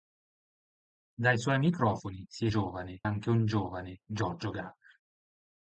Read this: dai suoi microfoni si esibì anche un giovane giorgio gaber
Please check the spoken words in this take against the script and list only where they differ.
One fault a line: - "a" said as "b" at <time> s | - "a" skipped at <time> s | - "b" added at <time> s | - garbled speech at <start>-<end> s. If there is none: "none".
- "esibì" said as "giovane" at 2.5 s